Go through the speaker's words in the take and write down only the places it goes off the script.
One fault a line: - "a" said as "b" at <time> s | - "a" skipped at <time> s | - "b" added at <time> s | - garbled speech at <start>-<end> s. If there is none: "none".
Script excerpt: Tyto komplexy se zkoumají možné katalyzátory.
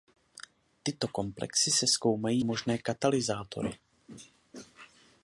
none